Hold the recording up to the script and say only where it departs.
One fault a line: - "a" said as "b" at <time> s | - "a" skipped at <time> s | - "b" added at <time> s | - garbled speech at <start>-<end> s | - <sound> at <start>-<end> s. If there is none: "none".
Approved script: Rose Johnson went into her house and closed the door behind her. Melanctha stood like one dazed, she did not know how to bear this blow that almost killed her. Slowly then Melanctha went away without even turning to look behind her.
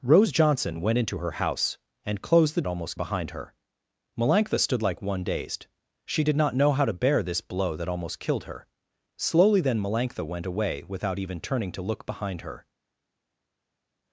- "door" said as "almost" at 2.7 s